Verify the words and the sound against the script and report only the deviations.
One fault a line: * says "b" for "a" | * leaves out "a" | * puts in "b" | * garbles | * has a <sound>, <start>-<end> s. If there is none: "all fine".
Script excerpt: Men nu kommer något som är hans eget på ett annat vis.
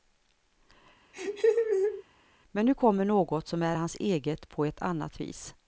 * has a laugh, 1.1-2.0 s